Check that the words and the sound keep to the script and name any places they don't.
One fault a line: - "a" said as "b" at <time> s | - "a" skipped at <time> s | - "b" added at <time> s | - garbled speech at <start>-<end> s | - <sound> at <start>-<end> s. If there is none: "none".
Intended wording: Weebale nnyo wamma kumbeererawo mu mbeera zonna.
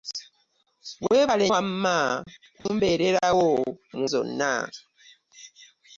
- "nnyo" skipped at 1.5 s
- dropout at 2.6-2.7 s
- "mbeera" skipped at 4.0 s